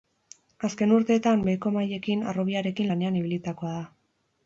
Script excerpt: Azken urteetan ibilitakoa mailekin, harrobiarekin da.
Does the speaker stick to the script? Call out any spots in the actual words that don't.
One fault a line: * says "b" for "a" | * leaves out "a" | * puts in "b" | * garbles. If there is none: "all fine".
* says "beheko" for "ibilitakoa"
* puts in "lanean ibilitakoa"